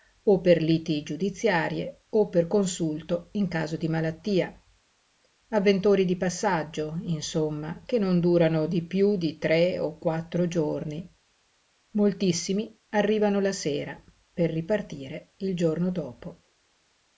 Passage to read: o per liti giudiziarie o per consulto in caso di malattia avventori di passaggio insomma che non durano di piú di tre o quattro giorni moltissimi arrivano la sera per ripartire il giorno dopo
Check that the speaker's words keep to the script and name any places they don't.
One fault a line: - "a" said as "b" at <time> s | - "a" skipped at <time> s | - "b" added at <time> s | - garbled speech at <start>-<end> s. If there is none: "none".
none